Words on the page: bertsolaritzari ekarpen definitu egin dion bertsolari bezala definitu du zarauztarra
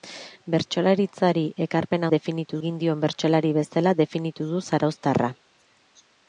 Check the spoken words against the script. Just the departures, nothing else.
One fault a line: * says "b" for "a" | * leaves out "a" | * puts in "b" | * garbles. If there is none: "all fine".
all fine